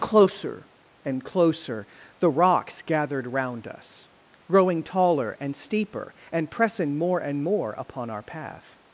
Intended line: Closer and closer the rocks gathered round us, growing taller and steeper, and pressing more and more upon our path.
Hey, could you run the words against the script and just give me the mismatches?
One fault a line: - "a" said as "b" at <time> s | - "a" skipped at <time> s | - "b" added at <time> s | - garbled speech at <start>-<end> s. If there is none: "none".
none